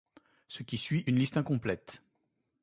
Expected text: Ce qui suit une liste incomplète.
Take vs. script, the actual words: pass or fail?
pass